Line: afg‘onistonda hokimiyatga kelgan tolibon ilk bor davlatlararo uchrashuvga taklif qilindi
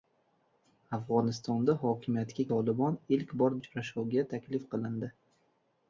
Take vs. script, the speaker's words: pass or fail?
fail